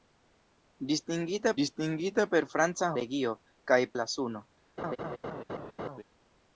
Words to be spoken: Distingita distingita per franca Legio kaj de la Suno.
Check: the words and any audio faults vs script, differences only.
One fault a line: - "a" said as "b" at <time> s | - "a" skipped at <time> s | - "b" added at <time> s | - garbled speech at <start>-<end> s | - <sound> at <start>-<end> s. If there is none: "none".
- laugh at 4.8-6.0 s